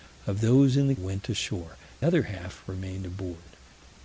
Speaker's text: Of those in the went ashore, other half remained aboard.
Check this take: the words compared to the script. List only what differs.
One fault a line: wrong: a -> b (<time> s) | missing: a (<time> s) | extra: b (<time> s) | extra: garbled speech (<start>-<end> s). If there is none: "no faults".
no faults